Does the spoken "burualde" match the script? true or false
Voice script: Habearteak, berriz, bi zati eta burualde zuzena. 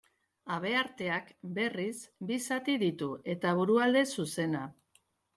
true